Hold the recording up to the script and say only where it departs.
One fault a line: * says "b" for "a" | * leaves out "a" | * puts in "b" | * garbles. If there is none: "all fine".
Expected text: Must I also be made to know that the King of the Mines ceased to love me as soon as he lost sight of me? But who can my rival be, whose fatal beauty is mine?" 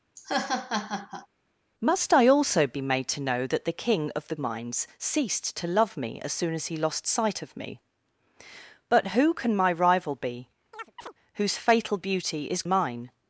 all fine